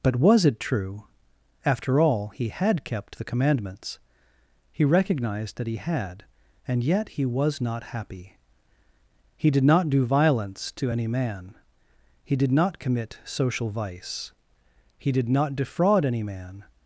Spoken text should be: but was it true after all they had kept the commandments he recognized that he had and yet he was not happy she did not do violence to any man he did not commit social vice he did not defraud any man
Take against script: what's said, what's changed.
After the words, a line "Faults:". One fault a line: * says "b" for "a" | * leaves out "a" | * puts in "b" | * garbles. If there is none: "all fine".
but was it true after all he had kept the commandments he recognized that he had and yet he was not happy he did not do violence to any man he did not commit social vice he did not defraud any man
Faults:
* says "he" for "they"
* says "he" for "she"